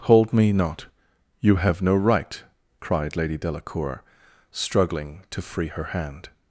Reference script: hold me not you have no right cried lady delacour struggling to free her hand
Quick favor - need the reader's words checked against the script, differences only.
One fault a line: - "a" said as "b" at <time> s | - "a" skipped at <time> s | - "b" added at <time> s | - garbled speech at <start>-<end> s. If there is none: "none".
none